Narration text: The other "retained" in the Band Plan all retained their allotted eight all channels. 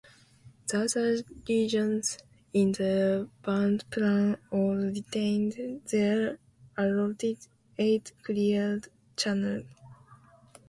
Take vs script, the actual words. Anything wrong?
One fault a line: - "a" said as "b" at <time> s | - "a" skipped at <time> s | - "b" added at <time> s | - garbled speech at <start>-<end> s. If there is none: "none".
- "retained" said as "regions" at 1.5 s
- "all" said as "cleared" at 8.2 s